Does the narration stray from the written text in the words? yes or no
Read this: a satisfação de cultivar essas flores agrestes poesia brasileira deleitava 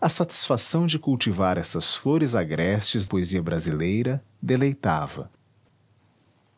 no